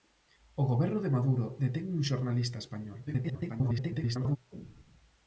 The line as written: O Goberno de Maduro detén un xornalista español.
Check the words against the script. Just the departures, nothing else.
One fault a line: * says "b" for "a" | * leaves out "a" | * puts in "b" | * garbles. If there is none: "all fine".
* garbles